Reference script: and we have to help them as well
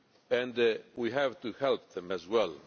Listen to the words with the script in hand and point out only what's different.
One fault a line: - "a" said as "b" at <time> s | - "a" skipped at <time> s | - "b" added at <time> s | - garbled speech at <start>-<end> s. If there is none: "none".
none